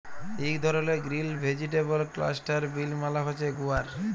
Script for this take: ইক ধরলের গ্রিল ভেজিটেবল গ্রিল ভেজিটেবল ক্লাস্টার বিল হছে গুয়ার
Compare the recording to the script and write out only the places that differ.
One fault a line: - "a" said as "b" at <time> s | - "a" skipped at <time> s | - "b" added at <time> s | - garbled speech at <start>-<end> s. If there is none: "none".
- "গ্রিল ভেজিটেবল" skipped at 2.0 s
- "মালে" added at 3.0 s